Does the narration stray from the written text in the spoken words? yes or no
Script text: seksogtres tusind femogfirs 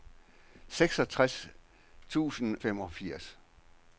no